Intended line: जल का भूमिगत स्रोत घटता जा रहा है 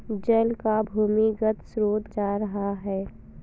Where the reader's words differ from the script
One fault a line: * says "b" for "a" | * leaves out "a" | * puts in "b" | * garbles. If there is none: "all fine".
* leaves out "घटता"